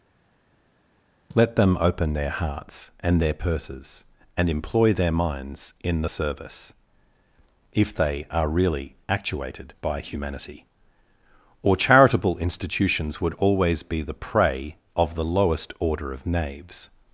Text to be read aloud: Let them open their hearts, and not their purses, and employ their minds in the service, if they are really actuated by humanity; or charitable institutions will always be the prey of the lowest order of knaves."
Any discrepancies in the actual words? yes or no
yes